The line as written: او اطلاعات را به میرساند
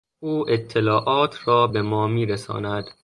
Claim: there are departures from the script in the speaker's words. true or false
true